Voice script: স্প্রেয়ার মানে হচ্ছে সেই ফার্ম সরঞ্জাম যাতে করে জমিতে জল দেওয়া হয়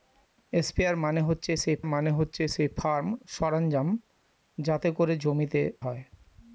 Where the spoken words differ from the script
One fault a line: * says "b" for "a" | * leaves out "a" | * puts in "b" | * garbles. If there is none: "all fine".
* puts in "মানে হচ্ছে সেই"
* leaves out "জল দেওয়া"